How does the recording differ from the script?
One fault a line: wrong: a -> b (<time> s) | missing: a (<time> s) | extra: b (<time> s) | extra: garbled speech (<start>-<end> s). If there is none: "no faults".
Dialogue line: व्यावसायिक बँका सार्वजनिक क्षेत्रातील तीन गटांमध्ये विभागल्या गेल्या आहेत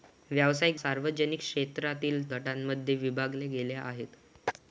missing: बँका (0.8 s)
missing: तीन (2.2 s)